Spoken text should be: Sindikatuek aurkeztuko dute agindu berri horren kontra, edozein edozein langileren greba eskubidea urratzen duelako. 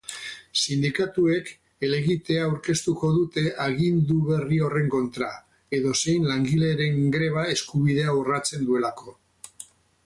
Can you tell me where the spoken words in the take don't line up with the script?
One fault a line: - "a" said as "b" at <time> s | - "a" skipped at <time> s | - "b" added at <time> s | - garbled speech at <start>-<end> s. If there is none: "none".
- "helegitea" added at 1.9 s
- "edozein" skipped at 6.3 s